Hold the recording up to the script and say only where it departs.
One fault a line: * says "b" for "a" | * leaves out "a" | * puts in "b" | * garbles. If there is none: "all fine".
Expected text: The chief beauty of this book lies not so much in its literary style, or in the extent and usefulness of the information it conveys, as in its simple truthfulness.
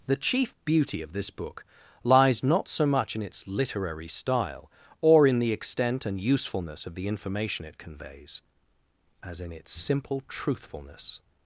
all fine